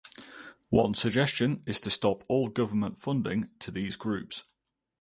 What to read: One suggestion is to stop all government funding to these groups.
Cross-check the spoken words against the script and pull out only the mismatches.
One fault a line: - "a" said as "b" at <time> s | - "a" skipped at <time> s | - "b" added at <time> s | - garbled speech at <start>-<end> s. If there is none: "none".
none